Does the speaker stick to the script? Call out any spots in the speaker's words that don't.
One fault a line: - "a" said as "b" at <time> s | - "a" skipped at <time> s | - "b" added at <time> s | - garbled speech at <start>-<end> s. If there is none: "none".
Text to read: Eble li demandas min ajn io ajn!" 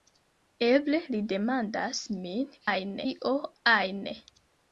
none